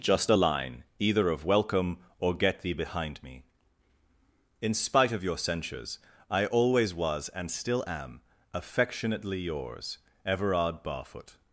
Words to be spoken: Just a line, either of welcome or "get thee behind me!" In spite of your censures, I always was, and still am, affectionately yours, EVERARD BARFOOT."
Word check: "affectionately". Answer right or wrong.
right